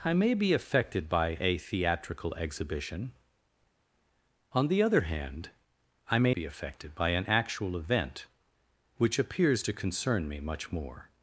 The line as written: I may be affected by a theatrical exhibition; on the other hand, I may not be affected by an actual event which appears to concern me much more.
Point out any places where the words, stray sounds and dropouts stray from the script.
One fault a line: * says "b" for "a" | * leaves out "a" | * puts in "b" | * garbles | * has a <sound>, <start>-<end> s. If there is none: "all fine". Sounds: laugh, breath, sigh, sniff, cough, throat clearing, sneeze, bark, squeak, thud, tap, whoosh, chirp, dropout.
* leaves out "not"